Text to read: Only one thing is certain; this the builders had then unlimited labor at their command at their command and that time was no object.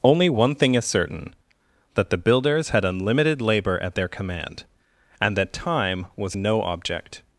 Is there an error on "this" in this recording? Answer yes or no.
yes